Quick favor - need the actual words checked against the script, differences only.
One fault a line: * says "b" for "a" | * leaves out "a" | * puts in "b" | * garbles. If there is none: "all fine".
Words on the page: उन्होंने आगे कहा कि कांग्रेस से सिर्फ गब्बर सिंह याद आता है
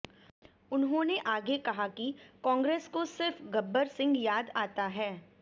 * says "को" for "से"